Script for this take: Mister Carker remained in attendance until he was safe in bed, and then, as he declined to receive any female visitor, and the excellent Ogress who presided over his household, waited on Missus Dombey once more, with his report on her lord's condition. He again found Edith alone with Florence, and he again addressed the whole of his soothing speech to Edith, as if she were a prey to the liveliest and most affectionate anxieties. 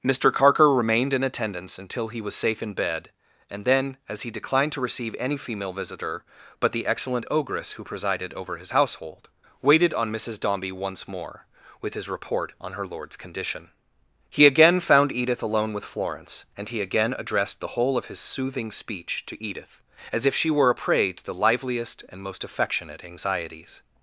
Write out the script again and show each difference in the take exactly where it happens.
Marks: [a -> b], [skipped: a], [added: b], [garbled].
Mister Carker remained in attendance until he was safe in bed, and then, as he declined to receive any female visitor, [and -> but] the excellent Ogress who presided over his household, waited on Missus Dombey once more, with his report on her lord's condition. He again found Edith alone with Florence, and he again addressed the whole of his soothing speech to Edith, as if she were a prey to the liveliest and most affectionate anxieties.